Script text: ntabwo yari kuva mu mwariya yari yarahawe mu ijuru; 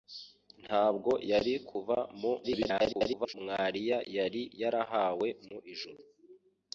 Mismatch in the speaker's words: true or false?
true